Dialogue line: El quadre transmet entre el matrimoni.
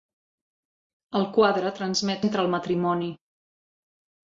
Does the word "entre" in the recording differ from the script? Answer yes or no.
no